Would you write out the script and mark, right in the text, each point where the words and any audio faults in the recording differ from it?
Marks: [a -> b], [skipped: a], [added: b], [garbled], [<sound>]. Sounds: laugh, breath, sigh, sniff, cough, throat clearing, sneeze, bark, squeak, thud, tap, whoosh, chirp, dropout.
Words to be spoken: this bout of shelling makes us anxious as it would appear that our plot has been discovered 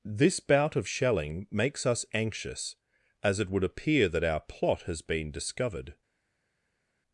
this bout of shelling makes us anxious as it would appear that our plot has been discovered